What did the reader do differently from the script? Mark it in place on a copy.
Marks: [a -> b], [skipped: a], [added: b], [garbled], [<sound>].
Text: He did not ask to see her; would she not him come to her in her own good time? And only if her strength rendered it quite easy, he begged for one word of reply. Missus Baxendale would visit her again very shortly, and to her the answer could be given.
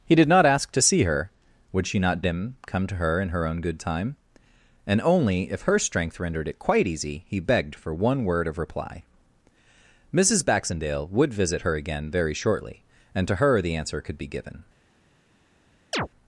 He did not ask to see her; would she not him come to her in her own good time? And only if her strength rendered it quite easy, he begged for one word of reply. Missus Baxendale would visit her again very shortly, and to her the answer could be given. [chirp]